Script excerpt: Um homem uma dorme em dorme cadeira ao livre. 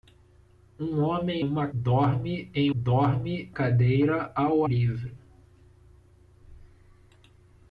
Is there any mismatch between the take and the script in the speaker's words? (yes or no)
no